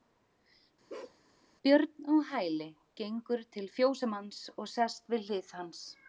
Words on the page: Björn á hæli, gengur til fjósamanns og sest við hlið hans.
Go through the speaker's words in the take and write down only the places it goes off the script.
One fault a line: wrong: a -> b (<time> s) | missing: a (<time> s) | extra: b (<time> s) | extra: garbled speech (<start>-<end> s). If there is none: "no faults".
no faults